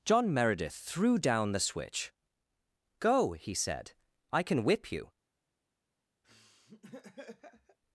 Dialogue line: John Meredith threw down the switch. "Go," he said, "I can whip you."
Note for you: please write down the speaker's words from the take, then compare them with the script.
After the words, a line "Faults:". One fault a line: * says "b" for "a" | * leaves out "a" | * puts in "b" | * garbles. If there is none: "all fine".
John Meredith threw down the switch. "Go," he said, "I can whip you."
Faults:
all fine